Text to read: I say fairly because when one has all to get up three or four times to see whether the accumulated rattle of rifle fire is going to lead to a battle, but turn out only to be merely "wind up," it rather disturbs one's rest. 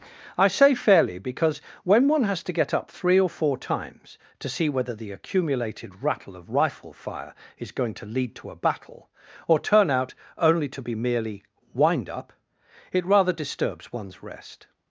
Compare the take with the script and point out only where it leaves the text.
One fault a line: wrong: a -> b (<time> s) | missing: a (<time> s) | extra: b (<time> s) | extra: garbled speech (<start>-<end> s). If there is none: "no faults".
missing: all (2.4 s)
wrong: but -> or (9.5 s)